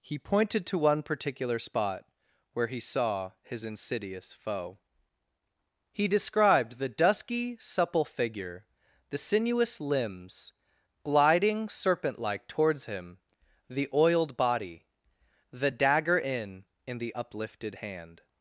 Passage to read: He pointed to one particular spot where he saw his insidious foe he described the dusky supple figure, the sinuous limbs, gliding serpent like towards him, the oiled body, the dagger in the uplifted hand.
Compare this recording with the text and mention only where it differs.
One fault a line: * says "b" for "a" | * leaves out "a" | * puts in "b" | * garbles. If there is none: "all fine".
* puts in "in"